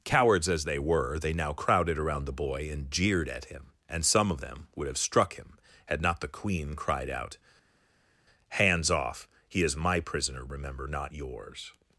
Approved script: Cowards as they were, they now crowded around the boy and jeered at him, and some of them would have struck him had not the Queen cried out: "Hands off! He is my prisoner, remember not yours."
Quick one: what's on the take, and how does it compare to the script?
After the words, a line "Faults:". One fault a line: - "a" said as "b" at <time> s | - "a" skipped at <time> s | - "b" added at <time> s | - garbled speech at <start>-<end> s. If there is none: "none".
Cowards as they were, they now crowded around the boy and jeered at him, and some of them would have struck him had not the Queen cried out: "Hands off! He is my prisoner, remember not yours."
Faults:
none